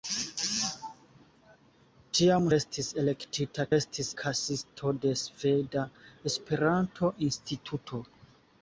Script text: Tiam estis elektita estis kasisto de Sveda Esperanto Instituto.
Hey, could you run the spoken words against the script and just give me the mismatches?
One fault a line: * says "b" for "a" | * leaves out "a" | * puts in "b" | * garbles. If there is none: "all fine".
all fine